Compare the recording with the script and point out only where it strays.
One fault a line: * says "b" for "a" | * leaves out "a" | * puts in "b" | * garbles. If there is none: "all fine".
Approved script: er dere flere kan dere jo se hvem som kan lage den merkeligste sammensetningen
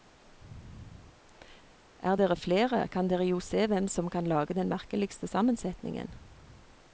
all fine